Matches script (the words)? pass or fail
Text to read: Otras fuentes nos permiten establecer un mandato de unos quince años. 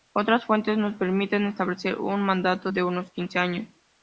pass